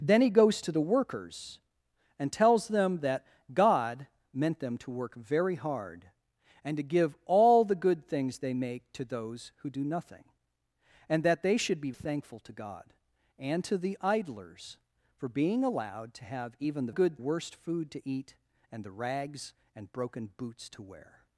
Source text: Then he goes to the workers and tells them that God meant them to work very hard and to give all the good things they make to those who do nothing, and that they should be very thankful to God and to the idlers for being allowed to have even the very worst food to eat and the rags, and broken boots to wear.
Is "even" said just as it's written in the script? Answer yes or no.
yes